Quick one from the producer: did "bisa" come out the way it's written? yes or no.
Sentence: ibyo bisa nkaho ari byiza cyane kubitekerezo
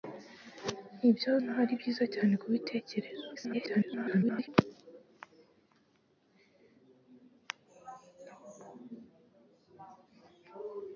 no